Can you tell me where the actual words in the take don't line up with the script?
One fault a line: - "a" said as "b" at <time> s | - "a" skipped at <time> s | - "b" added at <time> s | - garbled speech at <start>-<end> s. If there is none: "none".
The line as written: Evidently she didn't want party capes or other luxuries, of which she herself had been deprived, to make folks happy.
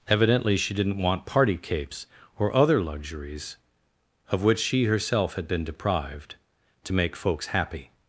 none